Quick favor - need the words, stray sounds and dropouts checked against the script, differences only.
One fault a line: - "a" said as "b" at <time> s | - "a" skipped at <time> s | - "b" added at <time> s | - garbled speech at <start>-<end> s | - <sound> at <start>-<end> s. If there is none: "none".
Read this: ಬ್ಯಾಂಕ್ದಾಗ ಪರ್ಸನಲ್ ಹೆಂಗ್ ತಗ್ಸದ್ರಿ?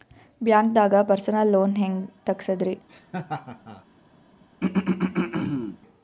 - "ಲೋನ್" added at 1.5 s
- laugh at 2.9-3.8 s
- throat clearing at 4.6-5.8 s